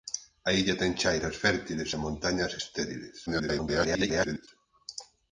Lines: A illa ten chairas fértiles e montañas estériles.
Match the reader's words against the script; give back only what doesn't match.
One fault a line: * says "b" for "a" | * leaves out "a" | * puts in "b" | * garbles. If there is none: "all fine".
* garbles